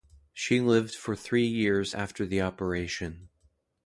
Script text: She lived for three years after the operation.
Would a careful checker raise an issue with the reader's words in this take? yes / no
no